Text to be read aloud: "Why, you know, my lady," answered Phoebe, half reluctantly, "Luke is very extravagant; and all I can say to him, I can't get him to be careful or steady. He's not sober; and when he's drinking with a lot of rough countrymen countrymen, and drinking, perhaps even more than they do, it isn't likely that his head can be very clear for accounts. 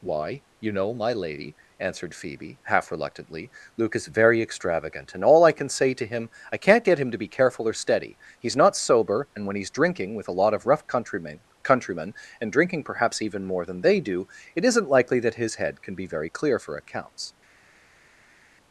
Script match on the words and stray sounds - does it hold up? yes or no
yes